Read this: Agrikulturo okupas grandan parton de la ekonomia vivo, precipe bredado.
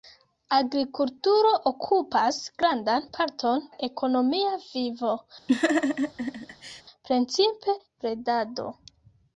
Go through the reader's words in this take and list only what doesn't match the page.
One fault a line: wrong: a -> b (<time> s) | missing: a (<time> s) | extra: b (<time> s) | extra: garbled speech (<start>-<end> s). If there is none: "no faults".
missing: de (3.6 s)